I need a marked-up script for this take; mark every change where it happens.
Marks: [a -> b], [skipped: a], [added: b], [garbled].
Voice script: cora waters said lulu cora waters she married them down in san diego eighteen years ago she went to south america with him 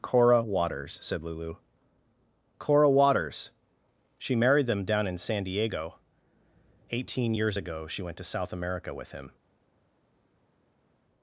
cora waters said lulu cora waters she married them down in san diego eighteen years ago she went to south america with him